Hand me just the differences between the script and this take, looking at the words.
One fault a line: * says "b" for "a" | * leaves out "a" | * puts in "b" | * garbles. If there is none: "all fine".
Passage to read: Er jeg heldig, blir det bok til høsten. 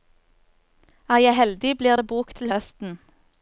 all fine